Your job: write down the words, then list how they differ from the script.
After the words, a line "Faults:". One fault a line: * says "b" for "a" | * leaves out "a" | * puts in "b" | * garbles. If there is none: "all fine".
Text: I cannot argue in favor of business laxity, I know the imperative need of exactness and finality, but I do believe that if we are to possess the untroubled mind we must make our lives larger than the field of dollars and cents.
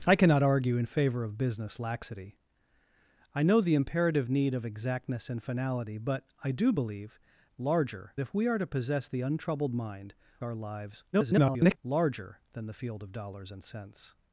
I cannot argue in favor of business laxity, I know the imperative need of exactness and finality, but I do believe larger if we are to possess the untroubled mind our lives [garbled] larger than the field of dollars and cents.
Faults:
* says "larger" for "that"
* leaves out "we must make"
* garbles